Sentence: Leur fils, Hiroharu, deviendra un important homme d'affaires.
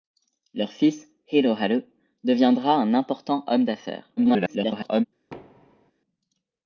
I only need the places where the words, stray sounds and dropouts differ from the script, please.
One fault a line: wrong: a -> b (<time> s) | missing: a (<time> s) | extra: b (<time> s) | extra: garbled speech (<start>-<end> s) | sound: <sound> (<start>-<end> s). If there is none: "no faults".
extra: garbled speech (4.2-5.0 s)
sound: thud (5.3-5.9 s)